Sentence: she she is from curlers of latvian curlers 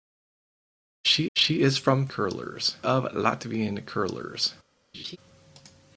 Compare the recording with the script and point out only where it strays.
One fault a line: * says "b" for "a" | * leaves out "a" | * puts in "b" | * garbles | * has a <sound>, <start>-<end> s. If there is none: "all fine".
* has a laugh, 4.9-5.2 s